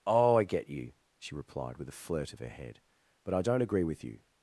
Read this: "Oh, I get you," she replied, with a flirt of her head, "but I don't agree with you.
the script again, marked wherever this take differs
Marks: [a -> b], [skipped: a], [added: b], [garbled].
"Oh, I get you," she replied, with a flirt of her head, "but I don't agree with you.